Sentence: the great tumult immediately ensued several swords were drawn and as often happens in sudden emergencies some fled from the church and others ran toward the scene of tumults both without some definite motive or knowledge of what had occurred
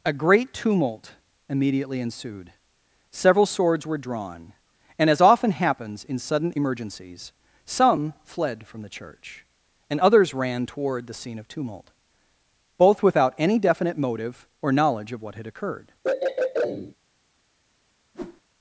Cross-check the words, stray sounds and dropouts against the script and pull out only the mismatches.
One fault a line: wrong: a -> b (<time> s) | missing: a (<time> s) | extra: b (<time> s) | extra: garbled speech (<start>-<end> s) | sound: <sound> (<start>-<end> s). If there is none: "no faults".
wrong: the -> a (0.0 s)
wrong: tumults -> tumult (11.5 s)
wrong: some -> any (13.4 s)
sound: throat clearing (16.0-17.0 s)
sound: whoosh (18.1-18.4 s)